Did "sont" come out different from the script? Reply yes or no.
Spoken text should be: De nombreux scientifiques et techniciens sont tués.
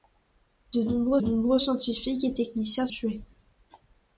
yes